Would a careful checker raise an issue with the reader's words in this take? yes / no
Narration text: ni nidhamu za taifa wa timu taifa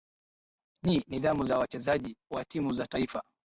yes